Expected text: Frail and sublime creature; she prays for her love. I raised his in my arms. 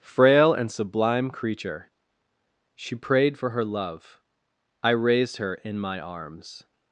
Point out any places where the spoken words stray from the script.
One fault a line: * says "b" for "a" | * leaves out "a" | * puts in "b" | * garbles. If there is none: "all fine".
* says "prayed" for "prays"
* says "her" for "his"